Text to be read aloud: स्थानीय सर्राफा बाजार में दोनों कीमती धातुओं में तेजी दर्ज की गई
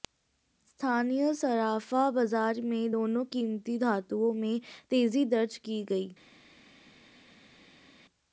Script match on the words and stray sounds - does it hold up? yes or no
yes